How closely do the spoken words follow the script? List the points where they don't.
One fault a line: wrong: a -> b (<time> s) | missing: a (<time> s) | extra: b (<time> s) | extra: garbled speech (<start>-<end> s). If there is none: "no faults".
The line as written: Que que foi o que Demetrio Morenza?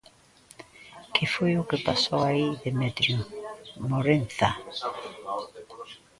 missing: que (1.2 s)
extra: pasou aí (1.9 s)